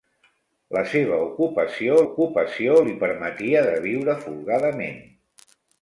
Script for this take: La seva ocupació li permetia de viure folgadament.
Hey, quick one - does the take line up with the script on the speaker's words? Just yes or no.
no